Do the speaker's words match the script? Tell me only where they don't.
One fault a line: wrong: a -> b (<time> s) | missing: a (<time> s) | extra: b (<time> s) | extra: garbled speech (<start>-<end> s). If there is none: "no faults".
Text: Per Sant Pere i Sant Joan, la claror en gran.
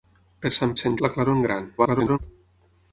missing: Pere (0.7 s)
missing: Joan (1.0 s)
extra: garbled speech (1.8-2.2 s)